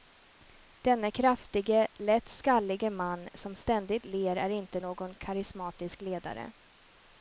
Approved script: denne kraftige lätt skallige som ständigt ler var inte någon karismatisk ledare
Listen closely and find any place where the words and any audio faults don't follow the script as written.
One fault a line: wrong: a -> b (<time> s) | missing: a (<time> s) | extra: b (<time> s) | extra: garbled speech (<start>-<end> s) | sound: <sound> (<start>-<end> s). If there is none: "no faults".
extra: man (2.9 s)
wrong: var -> är (4.4 s)